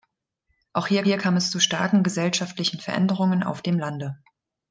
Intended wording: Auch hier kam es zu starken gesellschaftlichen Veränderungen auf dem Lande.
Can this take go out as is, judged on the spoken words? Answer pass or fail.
fail